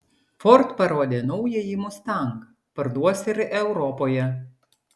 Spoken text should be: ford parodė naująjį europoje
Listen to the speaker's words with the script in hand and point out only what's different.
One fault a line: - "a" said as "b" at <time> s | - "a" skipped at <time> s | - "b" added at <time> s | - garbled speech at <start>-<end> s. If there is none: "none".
- "mustang parduos ir" added at 1.9 s